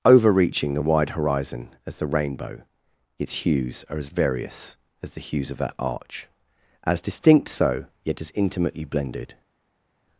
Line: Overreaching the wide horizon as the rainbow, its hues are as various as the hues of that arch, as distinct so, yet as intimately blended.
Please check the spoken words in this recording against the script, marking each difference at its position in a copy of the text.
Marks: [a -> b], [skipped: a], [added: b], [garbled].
Overreaching the wide horizon as the rainbow, its hues are as various as the hues of that arch, as distinct so, yet as intimately blended.